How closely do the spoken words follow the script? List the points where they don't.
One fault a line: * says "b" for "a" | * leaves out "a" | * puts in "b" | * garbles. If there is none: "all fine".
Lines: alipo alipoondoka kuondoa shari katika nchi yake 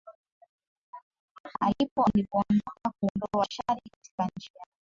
all fine